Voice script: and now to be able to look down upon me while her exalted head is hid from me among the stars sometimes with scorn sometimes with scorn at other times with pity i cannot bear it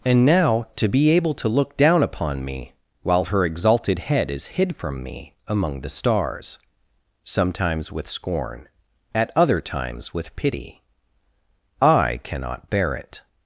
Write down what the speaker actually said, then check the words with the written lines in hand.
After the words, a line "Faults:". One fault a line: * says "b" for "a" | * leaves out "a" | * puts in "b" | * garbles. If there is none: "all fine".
and now to be able to look down upon me while her exalted head is hid from me among the stars sometimes with scorn at other times with pity i cannot bear it
Faults:
* leaves out "sometimes with scorn"